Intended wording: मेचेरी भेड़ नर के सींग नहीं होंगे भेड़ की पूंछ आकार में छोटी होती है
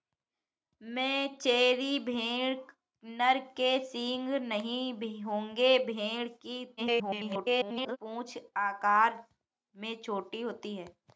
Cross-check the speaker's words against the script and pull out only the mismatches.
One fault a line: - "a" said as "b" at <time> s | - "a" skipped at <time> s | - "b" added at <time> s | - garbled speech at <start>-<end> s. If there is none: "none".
- garbled speech at 6.8-8.0 s